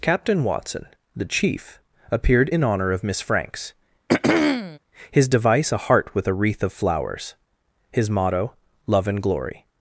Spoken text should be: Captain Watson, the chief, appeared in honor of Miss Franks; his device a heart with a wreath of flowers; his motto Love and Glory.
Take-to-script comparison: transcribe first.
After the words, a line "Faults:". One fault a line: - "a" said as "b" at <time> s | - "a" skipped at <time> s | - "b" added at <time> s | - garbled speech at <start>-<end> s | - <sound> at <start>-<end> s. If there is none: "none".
Captain Watson, the chief, appeared in honor of Miss Franks; his device a heart with a wreath of flowers; his motto Love and Glory.
Faults:
- throat clearing at 4.1-4.8 s